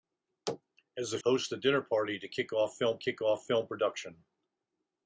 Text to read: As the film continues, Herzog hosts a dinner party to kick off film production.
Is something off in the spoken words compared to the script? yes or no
yes